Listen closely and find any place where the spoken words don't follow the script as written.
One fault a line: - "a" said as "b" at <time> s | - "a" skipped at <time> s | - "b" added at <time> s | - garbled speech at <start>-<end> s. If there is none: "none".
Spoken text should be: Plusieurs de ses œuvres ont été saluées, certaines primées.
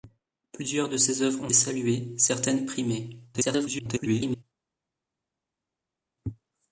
- "été" skipped at 1.5 s
- garbled speech at 3.3-4.4 s